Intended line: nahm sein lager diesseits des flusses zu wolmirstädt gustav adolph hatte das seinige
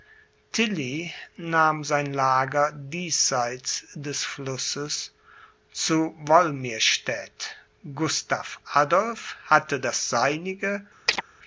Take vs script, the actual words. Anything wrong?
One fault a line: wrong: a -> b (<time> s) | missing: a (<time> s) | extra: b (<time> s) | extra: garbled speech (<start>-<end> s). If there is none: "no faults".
no faults